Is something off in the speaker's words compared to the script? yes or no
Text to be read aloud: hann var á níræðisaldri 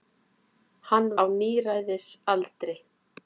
yes